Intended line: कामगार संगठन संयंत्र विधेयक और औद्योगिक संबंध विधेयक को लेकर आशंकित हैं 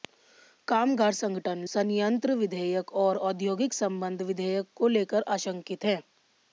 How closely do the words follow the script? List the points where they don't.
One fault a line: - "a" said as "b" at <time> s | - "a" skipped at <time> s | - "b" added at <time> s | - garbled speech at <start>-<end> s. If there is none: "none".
none